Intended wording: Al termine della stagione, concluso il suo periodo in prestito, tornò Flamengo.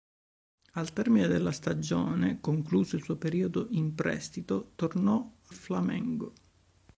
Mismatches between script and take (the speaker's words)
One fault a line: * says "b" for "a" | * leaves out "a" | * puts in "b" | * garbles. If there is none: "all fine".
all fine